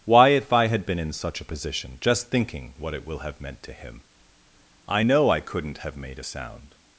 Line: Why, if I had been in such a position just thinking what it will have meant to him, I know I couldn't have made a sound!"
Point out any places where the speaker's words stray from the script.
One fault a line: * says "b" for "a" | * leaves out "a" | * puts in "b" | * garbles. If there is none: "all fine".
all fine